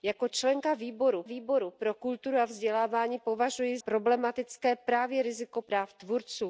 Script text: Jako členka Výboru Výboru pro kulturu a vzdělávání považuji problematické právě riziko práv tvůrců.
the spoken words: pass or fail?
pass